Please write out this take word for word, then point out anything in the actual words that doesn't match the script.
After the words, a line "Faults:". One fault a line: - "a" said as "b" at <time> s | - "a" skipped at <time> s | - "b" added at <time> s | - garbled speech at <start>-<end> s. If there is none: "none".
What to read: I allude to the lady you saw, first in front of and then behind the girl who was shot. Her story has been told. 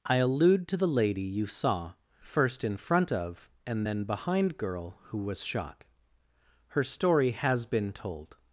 I allude to the lady you saw, first in front of and then behind girl who was shot. Her story has been told.
Faults:
- "the" skipped at 4.6 s